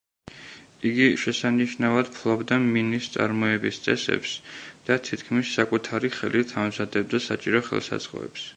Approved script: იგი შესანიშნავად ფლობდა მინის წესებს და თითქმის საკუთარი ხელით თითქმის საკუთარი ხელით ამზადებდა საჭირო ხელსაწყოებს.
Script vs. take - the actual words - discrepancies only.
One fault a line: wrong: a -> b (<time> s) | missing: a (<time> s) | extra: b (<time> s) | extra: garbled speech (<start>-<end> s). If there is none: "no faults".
extra: წარმოების (3.2 s)
missing: თითქმის საკუთარი ხელით (6.6 s)